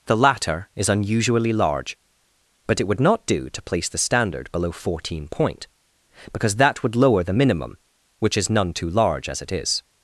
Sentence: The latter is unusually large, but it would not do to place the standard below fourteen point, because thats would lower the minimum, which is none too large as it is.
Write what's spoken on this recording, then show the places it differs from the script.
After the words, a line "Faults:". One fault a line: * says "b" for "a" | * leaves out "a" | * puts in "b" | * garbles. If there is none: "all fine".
The latter is unusually large, but it would not do to place the standard below fourteen point, because that would lower the minimum, which is none too large as it is.
Faults:
* says "that" for "thats"